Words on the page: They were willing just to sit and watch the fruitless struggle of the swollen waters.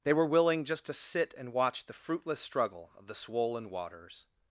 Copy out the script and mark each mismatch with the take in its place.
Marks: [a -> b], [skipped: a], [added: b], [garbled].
They were willing just to sit and watch the fruitless struggle of the swollen waters.